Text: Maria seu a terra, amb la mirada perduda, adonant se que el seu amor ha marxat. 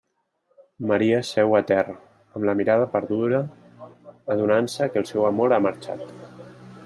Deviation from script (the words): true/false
false